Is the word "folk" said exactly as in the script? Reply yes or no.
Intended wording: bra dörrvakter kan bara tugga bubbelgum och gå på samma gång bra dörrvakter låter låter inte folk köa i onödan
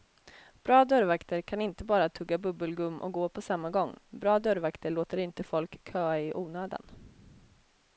yes